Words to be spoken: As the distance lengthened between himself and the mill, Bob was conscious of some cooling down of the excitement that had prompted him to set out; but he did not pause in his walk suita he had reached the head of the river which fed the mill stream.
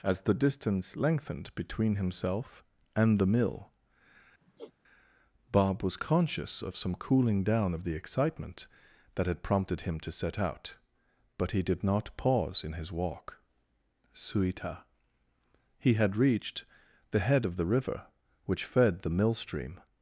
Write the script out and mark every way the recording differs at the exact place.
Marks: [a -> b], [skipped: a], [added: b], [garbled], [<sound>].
As the distance lengthened between himself and the mill, [sigh] Bob was conscious of some cooling down of the excitement that had prompted him to set out; but he did not pause in his walk suita he had reached the head of the river which fed the mill stream.